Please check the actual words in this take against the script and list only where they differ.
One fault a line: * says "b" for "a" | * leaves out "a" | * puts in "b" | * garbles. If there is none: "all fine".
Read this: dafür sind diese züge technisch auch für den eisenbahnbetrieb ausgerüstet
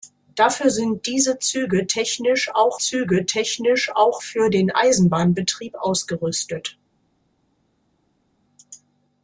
* puts in "züge technisch auch"